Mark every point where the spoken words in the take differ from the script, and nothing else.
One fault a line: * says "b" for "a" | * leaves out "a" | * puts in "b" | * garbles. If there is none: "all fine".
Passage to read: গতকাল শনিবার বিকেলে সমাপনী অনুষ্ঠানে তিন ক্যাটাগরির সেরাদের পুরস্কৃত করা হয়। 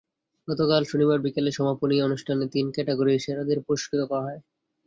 all fine